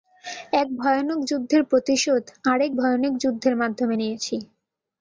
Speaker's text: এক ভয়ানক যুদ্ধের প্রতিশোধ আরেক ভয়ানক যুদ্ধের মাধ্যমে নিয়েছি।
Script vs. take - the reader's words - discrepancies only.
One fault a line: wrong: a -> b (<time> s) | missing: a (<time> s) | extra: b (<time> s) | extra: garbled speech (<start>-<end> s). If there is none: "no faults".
no faults